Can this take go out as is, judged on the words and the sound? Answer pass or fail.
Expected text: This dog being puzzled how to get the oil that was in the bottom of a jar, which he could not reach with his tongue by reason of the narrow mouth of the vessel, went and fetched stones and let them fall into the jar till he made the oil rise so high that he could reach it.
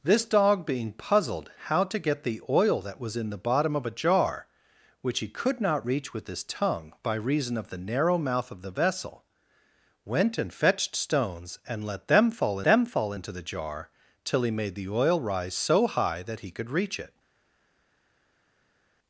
fail